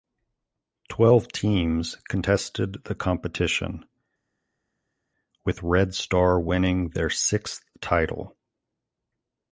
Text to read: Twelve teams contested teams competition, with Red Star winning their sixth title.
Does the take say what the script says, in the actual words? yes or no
no